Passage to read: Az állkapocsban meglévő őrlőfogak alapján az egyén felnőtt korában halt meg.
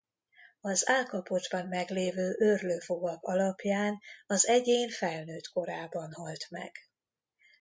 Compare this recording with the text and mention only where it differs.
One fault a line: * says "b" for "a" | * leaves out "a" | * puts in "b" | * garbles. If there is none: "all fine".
all fine